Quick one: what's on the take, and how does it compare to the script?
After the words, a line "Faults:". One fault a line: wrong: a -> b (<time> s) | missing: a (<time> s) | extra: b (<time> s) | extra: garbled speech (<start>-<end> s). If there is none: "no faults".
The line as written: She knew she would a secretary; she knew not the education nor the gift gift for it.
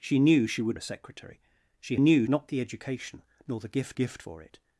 She knew she would a secretary; she knew not the education nor the gift gift for it.
Faults:
no faults